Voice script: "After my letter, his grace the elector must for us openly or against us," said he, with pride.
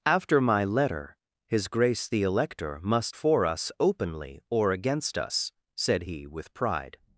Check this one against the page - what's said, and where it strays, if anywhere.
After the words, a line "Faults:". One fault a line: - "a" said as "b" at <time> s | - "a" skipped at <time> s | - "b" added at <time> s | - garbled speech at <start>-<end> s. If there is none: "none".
"After my letter, his grace the elector must for us openly or against us," said he, with pride.
Faults:
none